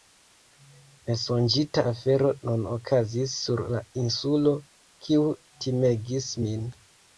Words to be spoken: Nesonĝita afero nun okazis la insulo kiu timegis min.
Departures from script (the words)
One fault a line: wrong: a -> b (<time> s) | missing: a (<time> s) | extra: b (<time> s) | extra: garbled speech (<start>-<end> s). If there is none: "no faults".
extra: sur (3.4 s)